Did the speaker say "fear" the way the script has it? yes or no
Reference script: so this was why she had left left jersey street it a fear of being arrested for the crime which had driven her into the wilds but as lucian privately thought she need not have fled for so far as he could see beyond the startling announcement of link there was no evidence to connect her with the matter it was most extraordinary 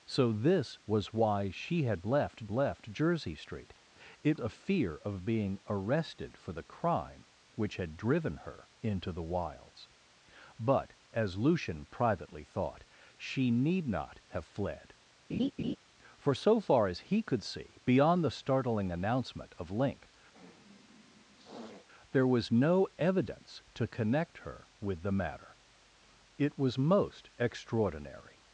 yes